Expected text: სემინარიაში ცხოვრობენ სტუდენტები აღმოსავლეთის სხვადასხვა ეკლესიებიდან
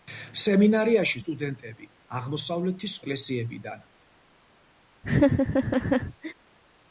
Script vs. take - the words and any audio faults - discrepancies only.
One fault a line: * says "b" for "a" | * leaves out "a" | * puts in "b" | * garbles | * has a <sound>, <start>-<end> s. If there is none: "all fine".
* leaves out "ცხოვრობენ"
* leaves out "სხვადასხვა"
* has a laugh, 5.0-6.3 s